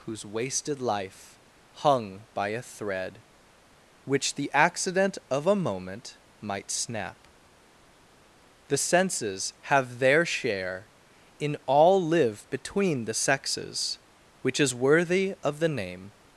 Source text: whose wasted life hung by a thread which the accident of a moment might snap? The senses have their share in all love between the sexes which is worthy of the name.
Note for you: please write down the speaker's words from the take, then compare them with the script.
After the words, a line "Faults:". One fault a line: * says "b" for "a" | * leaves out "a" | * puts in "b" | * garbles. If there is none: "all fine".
whose wasted life hung by a thread which the accident of a moment might snap? The senses have their share in all live between the sexes which is worthy of the name.
Faults:
* says "live" for "love"